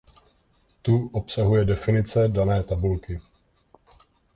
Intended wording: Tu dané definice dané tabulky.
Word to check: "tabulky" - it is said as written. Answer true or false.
true